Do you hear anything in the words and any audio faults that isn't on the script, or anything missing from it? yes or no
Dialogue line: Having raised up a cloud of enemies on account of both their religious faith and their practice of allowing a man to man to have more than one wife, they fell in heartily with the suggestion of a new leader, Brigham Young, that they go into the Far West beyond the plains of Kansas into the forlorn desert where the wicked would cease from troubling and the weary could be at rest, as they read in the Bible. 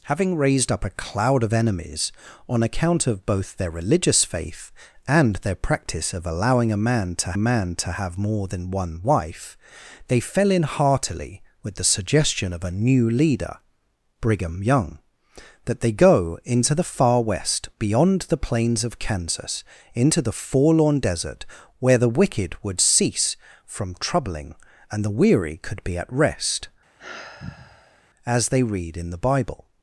yes